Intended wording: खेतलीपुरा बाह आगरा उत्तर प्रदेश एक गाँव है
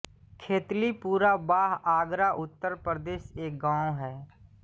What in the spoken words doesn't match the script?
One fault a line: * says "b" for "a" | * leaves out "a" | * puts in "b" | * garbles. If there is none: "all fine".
all fine